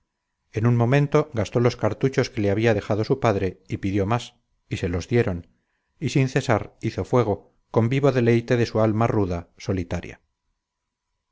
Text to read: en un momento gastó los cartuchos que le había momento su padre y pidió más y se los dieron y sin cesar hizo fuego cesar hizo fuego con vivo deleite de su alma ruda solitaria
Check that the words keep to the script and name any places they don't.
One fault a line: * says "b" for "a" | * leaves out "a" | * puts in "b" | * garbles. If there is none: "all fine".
* says "dejado" for "momento"
* leaves out "cesar hizo fuego"